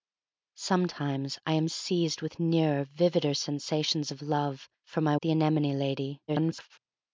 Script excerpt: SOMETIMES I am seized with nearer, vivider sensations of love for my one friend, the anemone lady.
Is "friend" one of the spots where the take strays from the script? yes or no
yes